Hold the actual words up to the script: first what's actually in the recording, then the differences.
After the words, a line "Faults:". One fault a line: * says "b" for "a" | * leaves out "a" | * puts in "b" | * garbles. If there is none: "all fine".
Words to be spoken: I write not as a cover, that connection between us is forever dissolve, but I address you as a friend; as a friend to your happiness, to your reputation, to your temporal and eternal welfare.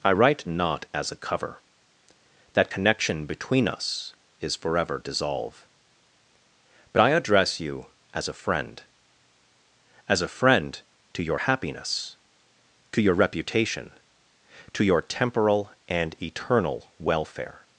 I write not as a cover, that connection between us is forever dissolve, but I address you as a friend; as a friend to your happiness, to your reputation, to your temporal and eternal welfare.
Faults:
all fine